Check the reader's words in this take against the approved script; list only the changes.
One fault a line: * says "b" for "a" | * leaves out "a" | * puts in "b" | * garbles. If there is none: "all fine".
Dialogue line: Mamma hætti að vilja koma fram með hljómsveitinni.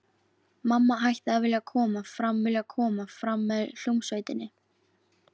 * puts in "vilja koma fram"